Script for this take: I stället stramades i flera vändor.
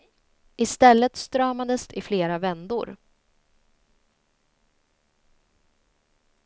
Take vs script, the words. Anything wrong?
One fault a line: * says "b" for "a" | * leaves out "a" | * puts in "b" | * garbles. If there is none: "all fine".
all fine